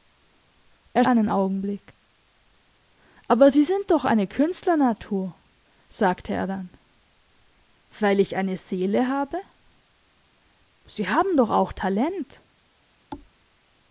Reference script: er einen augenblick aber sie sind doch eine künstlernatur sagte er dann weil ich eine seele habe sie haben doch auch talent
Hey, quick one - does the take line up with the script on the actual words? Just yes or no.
yes